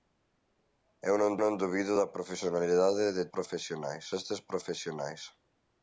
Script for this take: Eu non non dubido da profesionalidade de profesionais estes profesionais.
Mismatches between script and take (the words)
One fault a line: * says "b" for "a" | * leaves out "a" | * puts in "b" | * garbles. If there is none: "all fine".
all fine